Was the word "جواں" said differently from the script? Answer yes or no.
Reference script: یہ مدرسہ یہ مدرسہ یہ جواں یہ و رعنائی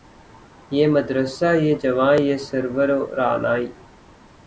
yes